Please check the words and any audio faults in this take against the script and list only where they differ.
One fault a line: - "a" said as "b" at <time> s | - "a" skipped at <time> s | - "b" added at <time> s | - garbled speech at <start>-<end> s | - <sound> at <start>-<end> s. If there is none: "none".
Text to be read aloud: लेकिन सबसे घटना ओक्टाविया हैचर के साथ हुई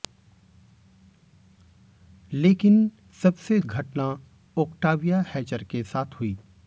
none